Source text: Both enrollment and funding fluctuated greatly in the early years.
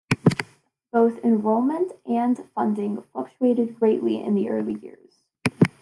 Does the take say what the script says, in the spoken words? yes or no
yes